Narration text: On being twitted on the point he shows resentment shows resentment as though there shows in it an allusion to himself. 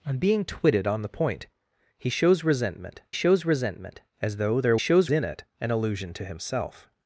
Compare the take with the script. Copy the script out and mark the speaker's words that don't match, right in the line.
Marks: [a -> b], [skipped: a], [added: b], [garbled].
On being twitted on the point he shows resentment shows resentment as though there shows in it an allusion to himself.